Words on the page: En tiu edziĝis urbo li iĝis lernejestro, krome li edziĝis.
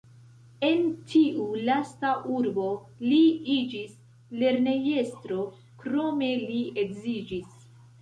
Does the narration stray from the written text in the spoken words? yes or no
yes